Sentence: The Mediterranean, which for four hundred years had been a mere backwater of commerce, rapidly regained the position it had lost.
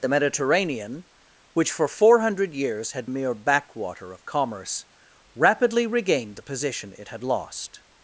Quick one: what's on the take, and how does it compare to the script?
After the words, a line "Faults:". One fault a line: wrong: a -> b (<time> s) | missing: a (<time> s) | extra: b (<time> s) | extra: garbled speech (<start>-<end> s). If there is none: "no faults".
The Mediterranean, which for four hundred years had a mere backwater of commerce, rapidly regained the position it had lost.
Faults:
missing: been (3.1 s)